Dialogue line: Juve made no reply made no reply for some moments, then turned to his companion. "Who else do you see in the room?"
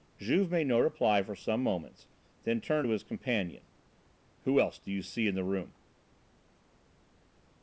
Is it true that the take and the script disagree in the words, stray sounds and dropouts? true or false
true